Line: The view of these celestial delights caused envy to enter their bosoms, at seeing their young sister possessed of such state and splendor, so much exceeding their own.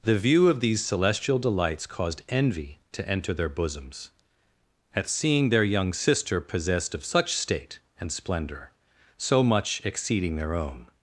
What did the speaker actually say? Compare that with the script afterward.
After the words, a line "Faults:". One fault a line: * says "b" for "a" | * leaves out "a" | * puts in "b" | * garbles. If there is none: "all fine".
The view of these celestial delights caused envy to enter their bosoms, at seeing their young sister possessed of such state and splendor, so much exceeding their own.
Faults:
all fine